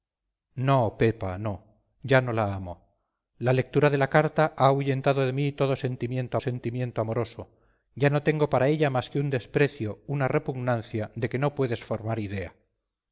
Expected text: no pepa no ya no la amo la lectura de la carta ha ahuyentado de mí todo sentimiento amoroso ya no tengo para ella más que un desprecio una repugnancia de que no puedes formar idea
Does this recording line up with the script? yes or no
no